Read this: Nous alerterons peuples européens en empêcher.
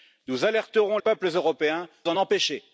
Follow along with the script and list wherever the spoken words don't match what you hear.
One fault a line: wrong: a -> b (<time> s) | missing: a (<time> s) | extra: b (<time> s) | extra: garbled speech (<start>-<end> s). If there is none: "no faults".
no faults